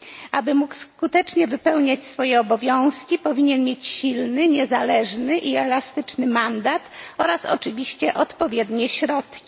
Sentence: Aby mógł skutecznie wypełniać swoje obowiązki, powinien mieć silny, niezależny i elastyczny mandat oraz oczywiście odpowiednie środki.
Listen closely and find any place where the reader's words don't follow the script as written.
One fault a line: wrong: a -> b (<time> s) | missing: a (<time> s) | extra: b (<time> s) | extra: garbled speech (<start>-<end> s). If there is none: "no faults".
no faults